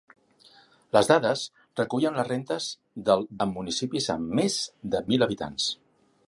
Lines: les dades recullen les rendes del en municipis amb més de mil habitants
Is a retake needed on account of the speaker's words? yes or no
no